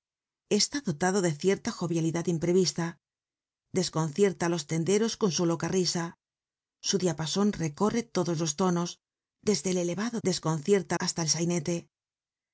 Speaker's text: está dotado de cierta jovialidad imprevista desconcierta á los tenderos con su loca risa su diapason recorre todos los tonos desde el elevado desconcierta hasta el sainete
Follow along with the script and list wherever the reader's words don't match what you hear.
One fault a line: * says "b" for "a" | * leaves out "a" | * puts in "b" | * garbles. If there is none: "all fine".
all fine